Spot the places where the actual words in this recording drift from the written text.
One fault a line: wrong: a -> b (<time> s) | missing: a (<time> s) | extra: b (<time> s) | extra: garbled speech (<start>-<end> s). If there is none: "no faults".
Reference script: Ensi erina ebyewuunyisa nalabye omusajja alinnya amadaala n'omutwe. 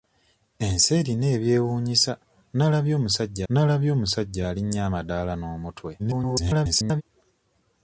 extra: nalabye omusajja (3.5 s)
extra: garbled speech (6.0-7.0 s)